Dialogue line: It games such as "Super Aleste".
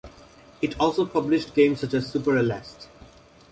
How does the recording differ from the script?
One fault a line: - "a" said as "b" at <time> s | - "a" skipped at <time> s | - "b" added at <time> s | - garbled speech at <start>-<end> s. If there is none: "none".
- "also published" added at 0.8 s